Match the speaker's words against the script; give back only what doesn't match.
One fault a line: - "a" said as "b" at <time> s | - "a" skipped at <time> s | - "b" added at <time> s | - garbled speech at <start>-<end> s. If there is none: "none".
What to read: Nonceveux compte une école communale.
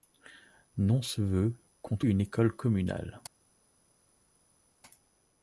none